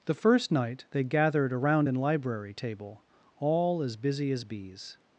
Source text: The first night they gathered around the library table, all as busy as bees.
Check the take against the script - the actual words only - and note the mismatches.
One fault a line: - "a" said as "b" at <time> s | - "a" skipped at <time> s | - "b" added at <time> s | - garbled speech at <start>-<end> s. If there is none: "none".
- "the" said as "an" at 1.9 s